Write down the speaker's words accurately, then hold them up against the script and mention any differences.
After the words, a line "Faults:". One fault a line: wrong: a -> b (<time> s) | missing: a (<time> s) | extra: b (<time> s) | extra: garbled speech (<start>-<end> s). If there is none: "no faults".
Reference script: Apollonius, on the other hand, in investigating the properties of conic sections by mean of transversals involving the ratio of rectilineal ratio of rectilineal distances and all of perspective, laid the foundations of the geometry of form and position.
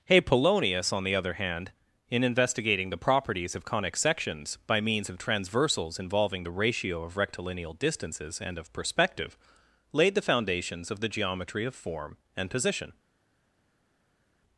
Apollonius, on the other hand, in investigating the properties of conic sections by means of transversals involving the ratio of rectilineal distances and of perspective, laid the foundations of the geometry of form and position.
Faults:
wrong: mean -> means (4.8 s)
missing: ratio of rectilineal (7.7 s)
missing: all (8.6 s)